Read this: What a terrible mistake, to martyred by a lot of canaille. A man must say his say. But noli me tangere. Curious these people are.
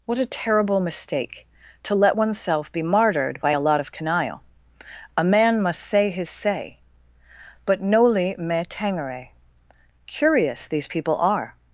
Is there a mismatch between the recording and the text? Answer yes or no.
yes